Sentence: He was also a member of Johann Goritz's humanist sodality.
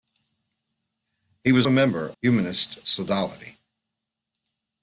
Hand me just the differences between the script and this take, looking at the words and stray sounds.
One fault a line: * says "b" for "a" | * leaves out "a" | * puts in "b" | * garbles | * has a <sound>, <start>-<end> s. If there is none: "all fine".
* leaves out "also"
* leaves out "of Johann Goritz's"